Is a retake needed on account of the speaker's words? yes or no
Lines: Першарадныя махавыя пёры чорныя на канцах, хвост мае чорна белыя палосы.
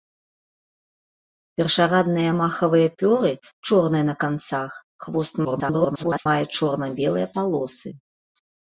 yes